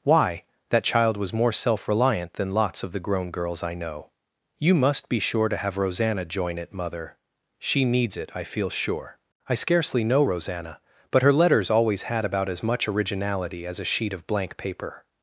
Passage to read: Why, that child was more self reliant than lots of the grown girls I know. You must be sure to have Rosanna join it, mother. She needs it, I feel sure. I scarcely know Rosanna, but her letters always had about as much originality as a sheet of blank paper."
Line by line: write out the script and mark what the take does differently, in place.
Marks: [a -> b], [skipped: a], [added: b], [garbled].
Why, that child was more self reliant than lots of the grown girls I know. You must be sure to have Rosanna join it, mother. She needs it, I feel sure. I scarcely know Rosanna, but her letters always had about as much originality as a sheet of blank paper."